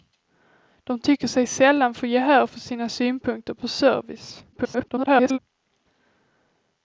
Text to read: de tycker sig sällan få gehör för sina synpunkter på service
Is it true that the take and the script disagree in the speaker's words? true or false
true